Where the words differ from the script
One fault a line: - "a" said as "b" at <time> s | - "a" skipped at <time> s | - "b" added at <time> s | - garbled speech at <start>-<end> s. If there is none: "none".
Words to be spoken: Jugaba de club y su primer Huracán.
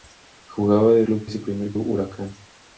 none